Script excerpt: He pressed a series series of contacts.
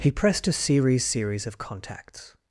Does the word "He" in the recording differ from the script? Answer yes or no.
no